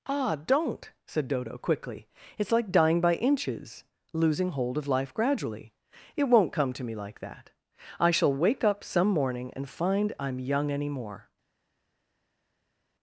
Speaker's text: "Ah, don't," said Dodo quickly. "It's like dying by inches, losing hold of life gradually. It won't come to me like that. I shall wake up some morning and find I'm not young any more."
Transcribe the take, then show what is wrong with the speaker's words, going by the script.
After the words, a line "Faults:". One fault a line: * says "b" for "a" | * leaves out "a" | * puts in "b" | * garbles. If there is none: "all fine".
"Ah, don't," said Dodo quickly. "It's like dying by inches, losing hold of life gradually. It won't come to me like that. I shall wake up some morning and find I'm young any more."
Faults:
* leaves out "not"